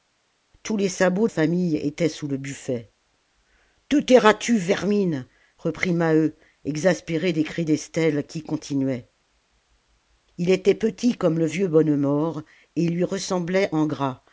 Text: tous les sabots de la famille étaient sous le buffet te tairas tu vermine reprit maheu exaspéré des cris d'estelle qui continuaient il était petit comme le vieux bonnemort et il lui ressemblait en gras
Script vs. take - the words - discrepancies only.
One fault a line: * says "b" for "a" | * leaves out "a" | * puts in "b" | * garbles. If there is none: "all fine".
* leaves out "de la"